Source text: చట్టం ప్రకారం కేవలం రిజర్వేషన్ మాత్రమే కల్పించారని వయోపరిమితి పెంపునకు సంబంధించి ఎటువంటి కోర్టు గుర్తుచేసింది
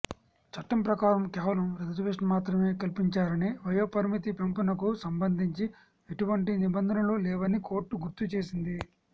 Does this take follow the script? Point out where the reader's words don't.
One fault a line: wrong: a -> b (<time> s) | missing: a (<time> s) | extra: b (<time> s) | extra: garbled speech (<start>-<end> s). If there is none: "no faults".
extra: నిబంధనలు లేవని (6.6 s)